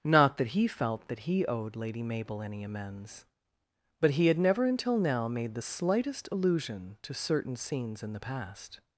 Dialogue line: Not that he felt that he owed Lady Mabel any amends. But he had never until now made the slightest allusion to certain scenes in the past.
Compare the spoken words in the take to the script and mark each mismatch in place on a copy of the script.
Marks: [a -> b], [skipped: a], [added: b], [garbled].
Not that he felt that he owed Lady Mabel any amends. But he had never until now made the slightest allusion to certain scenes in the past.